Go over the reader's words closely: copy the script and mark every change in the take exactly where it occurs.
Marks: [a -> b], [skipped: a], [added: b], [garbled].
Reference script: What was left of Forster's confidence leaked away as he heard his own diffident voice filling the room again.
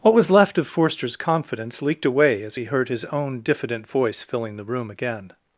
What was left of Forster's confidence leaked away as he heard his own diffident voice filling the room again.